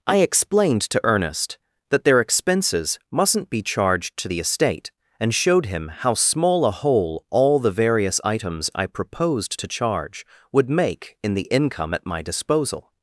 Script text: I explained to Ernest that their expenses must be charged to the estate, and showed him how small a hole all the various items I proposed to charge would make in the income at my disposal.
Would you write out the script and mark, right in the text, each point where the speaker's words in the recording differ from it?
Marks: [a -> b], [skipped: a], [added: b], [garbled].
I explained to Ernest that their expenses [must -> mustn't] be charged to the estate, and showed him how small a hole all the various items I proposed to charge would make in the income at my disposal.